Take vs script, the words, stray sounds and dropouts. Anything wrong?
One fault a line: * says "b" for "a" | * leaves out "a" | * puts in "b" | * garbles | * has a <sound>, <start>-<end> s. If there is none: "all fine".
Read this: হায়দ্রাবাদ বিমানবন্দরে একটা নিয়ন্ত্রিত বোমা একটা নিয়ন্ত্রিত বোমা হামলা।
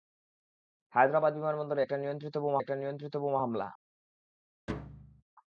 * has a thud, 4.7-5.2 s